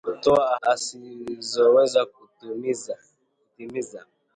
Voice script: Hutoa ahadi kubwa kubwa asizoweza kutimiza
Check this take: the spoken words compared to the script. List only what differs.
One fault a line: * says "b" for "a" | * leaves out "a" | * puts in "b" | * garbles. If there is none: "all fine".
* leaves out "ahadi kubwa kubwa"